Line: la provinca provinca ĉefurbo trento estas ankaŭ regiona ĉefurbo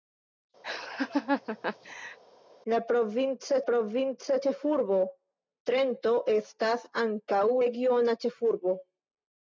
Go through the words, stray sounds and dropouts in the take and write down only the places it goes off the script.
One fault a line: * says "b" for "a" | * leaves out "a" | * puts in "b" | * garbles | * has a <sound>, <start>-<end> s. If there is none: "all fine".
* has a laugh, 0.6-2.2 s